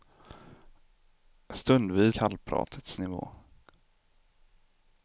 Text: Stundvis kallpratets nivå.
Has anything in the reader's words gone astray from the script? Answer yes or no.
no